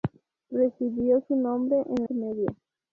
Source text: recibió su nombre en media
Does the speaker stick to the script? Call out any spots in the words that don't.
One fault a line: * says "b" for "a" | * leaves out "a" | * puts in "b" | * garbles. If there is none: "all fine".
all fine